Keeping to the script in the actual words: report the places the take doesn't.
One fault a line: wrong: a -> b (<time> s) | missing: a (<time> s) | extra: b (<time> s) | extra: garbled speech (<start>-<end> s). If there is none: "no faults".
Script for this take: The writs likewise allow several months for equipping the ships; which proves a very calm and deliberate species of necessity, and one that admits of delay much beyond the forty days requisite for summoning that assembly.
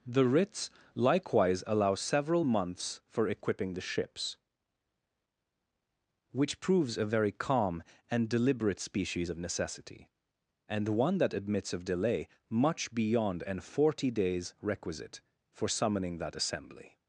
wrong: the -> an (13.4 s)